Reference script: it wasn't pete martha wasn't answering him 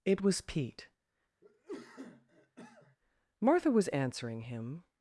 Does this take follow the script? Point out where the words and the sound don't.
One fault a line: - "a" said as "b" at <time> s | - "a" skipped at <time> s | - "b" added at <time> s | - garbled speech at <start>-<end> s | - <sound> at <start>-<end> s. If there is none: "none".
- "wasn't" said as "was" at 0.2 s
- cough at 1.4-3.0 s
- "wasn't" said as "was" at 3.7 s